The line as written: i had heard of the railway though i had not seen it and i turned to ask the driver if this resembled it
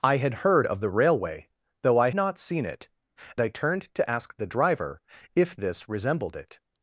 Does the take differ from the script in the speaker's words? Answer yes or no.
yes